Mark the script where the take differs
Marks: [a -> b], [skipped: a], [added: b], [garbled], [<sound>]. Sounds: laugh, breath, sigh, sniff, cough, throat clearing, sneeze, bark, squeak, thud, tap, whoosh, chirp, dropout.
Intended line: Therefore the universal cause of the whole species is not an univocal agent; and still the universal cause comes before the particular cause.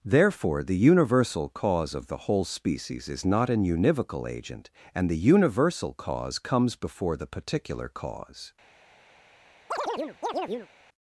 Therefore the universal cause of the whole species is not an univocal agent; and [skipped: still] the universal cause comes before the particular cause. [chirp]